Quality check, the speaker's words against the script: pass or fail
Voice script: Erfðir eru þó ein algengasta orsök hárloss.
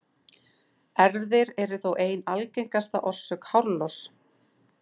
pass